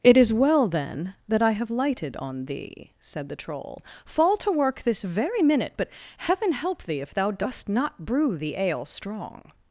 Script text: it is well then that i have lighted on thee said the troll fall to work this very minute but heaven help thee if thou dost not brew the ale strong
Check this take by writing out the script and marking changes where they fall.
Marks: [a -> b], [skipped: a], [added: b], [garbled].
it is well then that i have lighted on thee said the troll fall to work this very minute but heaven help thee if thou dost not brew the ale strong